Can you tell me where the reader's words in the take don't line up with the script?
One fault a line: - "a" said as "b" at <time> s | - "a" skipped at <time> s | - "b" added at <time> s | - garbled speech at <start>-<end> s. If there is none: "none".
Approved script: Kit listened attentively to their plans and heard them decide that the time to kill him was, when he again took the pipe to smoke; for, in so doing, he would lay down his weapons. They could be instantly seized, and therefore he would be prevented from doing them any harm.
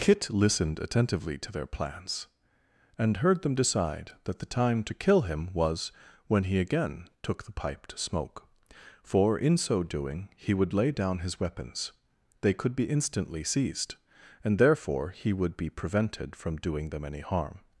none